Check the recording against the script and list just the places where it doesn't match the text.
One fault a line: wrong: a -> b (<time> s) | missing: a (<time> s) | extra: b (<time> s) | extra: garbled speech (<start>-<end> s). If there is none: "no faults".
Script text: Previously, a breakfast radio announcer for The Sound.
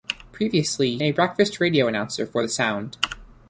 no faults